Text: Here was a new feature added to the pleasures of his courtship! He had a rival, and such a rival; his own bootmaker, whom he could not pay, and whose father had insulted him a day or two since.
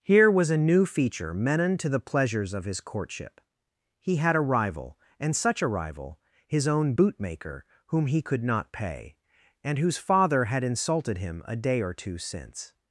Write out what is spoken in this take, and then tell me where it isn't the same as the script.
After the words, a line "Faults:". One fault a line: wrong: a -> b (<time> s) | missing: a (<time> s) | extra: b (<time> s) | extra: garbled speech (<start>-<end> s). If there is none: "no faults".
Here was a new feature menon to the pleasures of his courtship! He had a rival, and such a rival; his own bootmaker, whom he could not pay, and whose father had insulted him a day or two since.
Faults:
wrong: added -> menon (1.3 s)